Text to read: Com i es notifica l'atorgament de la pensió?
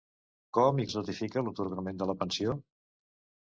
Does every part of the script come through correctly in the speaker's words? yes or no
yes